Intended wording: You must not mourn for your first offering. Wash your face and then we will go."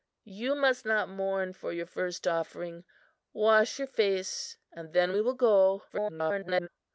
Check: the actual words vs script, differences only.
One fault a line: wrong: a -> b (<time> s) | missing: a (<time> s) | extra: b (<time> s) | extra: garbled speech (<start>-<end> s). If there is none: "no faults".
extra: garbled speech (5.9-6.7 s)